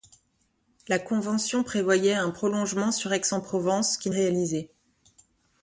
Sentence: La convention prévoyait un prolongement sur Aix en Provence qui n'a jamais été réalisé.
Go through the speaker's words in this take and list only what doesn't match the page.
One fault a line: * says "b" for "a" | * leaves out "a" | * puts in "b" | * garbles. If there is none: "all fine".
* leaves out "n'a jamais été"